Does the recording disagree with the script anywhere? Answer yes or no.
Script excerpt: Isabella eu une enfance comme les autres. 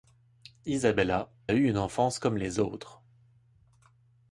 no